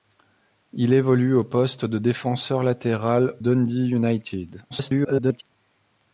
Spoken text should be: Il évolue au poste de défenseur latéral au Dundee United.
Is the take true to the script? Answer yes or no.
no